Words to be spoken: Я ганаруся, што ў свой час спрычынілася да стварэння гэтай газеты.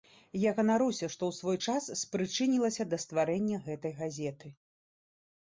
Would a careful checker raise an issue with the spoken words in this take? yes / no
no